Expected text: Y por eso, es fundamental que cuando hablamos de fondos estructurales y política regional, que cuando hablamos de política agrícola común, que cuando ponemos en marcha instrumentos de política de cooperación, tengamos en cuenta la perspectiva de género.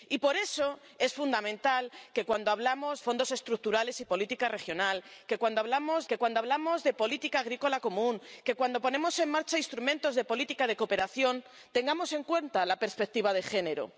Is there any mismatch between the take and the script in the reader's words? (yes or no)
yes